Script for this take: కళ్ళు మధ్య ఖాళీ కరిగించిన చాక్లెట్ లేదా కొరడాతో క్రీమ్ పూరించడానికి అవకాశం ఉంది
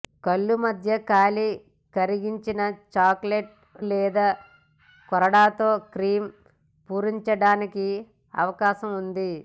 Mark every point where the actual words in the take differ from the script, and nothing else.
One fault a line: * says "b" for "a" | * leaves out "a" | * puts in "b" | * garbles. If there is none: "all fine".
all fine